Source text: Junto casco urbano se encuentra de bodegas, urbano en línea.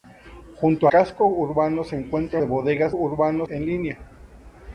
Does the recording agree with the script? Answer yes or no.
yes